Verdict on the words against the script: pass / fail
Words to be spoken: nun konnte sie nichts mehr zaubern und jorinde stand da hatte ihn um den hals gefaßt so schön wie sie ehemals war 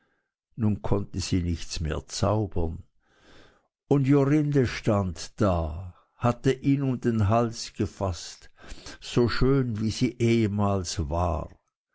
pass